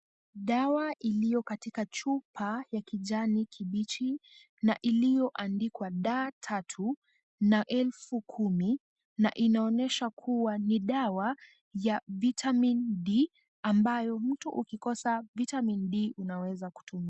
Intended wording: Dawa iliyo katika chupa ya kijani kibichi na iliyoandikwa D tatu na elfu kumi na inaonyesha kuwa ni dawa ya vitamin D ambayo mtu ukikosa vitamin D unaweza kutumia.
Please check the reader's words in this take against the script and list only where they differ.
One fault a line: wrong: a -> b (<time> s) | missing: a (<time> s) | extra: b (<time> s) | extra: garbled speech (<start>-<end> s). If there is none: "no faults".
no faults